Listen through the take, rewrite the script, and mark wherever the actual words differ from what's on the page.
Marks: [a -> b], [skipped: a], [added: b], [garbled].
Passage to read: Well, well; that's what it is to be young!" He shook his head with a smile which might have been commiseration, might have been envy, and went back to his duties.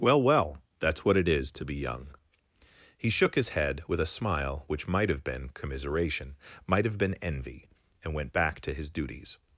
Well, well; that's what it is to be young!" He shook his head with a smile which might have been commiseration, might have been envy, and went back to his duties.